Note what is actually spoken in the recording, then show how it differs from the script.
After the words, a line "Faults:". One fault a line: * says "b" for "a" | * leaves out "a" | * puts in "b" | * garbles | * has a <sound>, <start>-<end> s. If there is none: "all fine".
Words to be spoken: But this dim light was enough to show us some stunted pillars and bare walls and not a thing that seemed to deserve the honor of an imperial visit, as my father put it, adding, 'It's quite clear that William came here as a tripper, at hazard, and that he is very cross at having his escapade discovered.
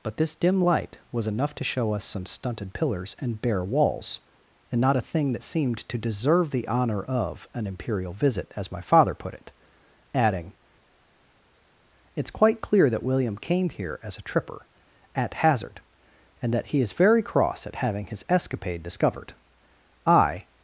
But this dim light was enough to show us some stunted pillars and bare walls and not a thing that seemed to deserve the honor of an imperial visit, as my father put it, adding, 'It's quite clear that William came here as a tripper, at hazard, and that he is very cross at having his escapade discovered. I
Faults:
* puts in "I"